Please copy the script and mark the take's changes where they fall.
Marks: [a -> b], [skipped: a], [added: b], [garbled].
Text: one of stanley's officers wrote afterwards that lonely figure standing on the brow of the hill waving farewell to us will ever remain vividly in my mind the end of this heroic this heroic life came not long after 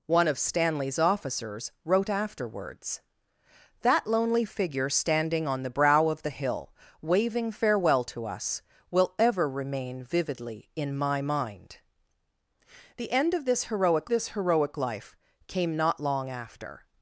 one of stanley's officers wrote afterwards that lonely figure standing on the brow of the hill waving farewell to us will ever remain vividly in my mind the end of this heroic this heroic life came not long after